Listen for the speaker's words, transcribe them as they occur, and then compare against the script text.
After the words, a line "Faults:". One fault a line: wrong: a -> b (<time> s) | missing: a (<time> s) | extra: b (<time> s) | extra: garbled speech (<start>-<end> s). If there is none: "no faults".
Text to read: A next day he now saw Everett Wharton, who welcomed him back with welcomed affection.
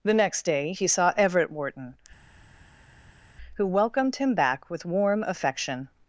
The next day he saw Everett Wharton, who welcomed him back with warm affection.
Faults:
wrong: A -> The (0.0 s)
missing: now (0.9 s)
wrong: welcomed -> warm (4.8 s)